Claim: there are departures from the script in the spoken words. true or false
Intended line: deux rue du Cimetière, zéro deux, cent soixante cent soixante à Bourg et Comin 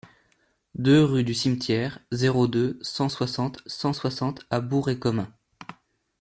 false